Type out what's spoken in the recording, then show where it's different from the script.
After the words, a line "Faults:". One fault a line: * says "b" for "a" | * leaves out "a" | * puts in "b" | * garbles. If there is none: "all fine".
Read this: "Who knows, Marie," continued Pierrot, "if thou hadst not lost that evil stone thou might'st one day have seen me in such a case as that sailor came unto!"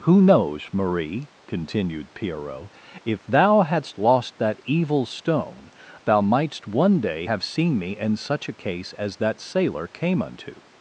"Who knows, Marie," continued Pierrot, "if thou hadst lost that evil stone thou might'st one day have seen me in such a case as that sailor came unto!"
Faults:
* leaves out "not"